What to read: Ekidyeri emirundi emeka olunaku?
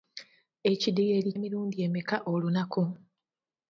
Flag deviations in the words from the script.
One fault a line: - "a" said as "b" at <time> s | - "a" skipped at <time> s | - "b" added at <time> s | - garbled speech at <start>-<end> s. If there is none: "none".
none